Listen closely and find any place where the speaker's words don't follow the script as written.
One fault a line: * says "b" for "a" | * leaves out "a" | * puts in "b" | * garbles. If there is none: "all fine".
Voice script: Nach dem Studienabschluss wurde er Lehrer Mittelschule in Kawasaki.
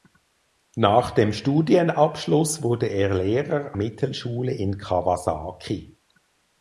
all fine